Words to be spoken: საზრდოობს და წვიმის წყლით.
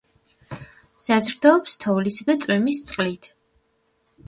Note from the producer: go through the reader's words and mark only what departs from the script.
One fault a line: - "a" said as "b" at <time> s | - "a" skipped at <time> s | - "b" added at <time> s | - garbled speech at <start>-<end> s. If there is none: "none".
- "თოვლისა" added at 1.8 s